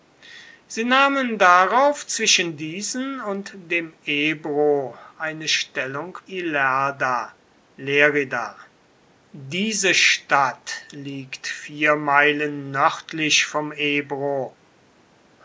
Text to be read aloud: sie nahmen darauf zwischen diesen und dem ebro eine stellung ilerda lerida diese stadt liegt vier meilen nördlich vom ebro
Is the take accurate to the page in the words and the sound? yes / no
yes